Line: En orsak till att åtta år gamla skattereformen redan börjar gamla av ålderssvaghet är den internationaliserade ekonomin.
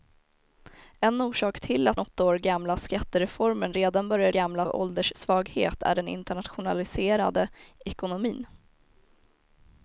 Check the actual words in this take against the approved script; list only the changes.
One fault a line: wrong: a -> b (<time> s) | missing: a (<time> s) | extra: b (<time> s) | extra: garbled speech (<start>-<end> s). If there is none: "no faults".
no faults